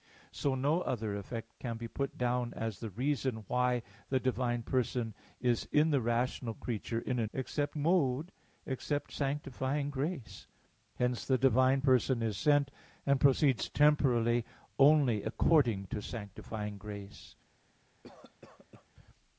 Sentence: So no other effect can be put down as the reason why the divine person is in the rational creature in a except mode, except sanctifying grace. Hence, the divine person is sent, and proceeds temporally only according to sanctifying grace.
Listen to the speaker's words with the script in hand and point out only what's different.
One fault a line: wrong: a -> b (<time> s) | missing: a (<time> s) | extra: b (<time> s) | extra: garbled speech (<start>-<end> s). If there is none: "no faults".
no faults